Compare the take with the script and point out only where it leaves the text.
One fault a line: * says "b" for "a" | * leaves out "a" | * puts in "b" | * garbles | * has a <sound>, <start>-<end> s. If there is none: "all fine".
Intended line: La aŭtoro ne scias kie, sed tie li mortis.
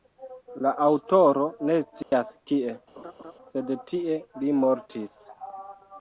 * has a dropout, 2.0-2.1 s
* has a laugh, 3.0-3.3 s